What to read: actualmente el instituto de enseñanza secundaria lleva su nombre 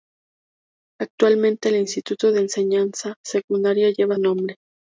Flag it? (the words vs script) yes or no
yes